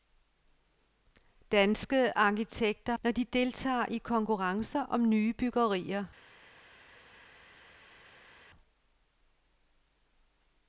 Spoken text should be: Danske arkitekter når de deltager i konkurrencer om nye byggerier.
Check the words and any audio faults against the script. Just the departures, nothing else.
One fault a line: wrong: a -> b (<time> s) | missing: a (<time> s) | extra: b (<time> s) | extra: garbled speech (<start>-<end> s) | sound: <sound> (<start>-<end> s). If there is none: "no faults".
no faults